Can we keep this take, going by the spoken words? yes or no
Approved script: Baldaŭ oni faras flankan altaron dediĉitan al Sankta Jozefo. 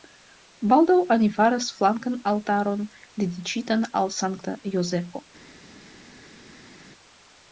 yes